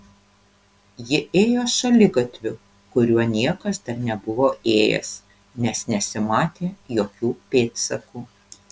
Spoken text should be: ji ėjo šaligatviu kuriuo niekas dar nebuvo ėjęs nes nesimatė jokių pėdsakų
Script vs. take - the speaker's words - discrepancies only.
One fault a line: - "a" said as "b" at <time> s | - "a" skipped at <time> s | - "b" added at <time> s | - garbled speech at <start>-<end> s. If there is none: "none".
none